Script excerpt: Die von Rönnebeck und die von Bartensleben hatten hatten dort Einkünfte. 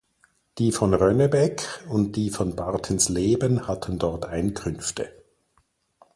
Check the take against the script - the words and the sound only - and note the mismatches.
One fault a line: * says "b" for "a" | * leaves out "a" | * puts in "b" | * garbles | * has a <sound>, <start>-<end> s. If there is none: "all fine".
* leaves out "hatten"